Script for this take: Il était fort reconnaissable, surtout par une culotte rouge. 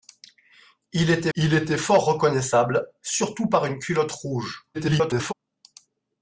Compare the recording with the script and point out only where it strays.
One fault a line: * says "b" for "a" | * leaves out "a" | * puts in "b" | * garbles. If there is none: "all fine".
* puts in "il était"
* garbles